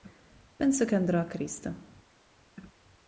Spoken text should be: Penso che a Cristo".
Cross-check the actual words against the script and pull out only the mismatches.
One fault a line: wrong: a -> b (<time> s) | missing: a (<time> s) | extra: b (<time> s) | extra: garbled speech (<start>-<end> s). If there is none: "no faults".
extra: andrò (0.9 s)